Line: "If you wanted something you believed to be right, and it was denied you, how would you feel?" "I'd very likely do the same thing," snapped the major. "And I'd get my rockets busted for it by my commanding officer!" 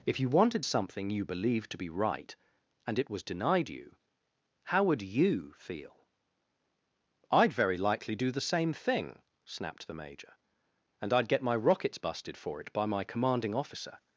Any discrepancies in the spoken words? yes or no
no